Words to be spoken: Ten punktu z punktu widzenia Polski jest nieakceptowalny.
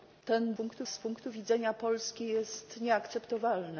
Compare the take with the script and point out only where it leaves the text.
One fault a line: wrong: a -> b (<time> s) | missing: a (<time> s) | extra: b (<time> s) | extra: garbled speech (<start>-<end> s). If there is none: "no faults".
no faults